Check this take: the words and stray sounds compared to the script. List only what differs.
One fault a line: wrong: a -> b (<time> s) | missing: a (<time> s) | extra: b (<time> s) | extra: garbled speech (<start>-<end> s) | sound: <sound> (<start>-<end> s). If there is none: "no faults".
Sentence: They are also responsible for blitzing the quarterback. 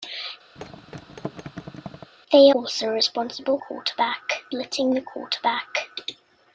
sound: thud (0.6-2.1 s)
missing: are (2.5 s)
wrong: for -> quarterback (3.6 s)